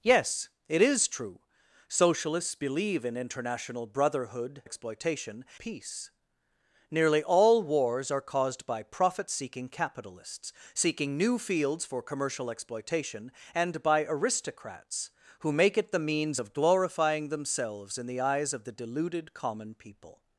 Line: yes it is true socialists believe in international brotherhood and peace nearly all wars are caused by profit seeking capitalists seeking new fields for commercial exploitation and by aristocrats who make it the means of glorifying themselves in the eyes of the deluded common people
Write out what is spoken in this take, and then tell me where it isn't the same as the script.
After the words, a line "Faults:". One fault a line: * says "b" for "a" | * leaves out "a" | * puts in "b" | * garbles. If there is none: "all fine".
yes it is true socialists believe in international brotherhood exploitation peace nearly all wars are caused by profit seeking capitalists seeking new fields for commercial exploitation and by aristocrats who make it the means of glorifying themselves in the eyes of the deluded common people
Faults:
* says "exploitation" for "and"